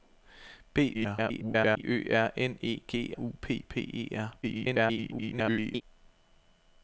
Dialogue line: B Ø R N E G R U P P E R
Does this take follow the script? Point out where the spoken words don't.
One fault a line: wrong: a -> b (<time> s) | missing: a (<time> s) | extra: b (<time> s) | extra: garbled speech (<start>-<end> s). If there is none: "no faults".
extra: garbled speech (0.9-1.8 s)
missing: R (3.1 s)
extra: garbled speech (4.4-5.8 s)